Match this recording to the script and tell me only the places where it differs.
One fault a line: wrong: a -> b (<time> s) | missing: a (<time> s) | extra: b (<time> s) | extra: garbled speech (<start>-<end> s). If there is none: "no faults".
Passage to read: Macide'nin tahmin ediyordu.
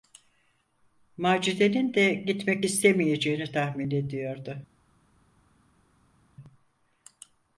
extra: de gitmek istemeyeceğini (1.9 s)